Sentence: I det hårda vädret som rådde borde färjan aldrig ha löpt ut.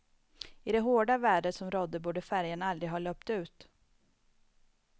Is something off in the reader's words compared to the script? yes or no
no